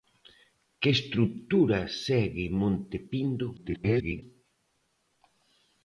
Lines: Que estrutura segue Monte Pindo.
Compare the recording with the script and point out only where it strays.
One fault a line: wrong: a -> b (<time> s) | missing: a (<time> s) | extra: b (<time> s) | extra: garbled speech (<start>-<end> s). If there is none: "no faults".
extra: garbled speech (3.6-4.2 s)